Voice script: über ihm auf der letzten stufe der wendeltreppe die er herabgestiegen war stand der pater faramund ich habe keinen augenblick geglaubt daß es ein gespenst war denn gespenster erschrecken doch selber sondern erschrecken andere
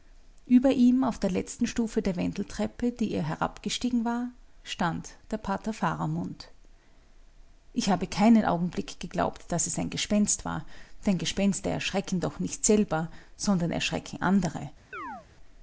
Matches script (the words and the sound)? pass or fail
fail